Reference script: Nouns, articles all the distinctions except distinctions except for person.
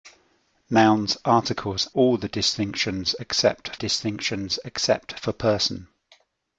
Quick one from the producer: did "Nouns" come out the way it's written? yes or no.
yes